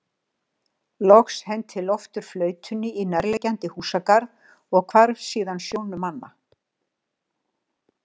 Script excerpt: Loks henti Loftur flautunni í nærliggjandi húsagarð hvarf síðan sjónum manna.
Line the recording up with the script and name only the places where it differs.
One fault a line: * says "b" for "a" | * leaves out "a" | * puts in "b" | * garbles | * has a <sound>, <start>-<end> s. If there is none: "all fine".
* puts in "og"